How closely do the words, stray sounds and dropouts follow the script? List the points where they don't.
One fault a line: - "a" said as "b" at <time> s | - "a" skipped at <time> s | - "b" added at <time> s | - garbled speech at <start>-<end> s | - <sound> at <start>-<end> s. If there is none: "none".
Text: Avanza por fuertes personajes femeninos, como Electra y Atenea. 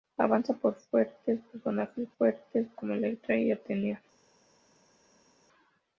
- "femeninos" said as "fuertes" at 2.2 s